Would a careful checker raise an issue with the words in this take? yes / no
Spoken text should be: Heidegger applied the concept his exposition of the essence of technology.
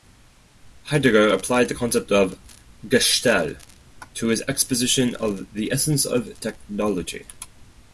yes